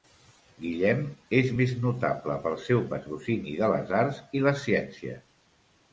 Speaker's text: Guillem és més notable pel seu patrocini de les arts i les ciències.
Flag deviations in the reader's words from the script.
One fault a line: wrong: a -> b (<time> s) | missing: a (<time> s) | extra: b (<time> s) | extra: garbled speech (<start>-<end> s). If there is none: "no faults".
no faults